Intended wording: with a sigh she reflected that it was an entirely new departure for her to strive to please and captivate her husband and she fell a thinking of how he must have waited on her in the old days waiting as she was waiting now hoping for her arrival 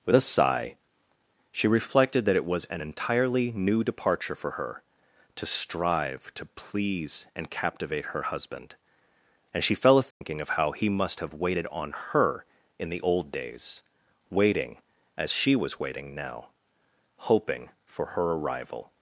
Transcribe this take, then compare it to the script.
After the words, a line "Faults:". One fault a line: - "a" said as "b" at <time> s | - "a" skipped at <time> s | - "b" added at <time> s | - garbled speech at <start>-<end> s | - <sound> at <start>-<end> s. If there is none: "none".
with a sigh she reflected that it was an entirely new departure for her to strive to please and captivate her husband and she fell a thinking of how he must have waited on her in the old days waiting as she was waiting now hoping for her arrival
Faults:
- dropout at 10.1-10.2 s